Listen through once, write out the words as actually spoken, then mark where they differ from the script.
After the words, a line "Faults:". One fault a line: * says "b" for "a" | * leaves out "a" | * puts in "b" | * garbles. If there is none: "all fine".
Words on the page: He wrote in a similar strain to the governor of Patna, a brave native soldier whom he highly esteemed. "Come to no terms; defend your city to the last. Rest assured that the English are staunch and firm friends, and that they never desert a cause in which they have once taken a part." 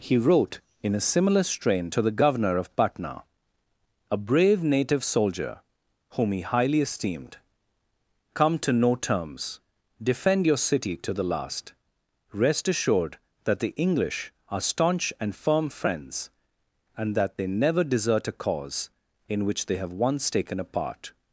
He wrote in a similar strain to the governor of Patna, a brave native soldier whom he highly esteemed. "Come to no terms; defend your city to the last. Rest assured that the English are staunch and firm friends, and that they never desert a cause in which they have once taken a part."
Faults:
all fine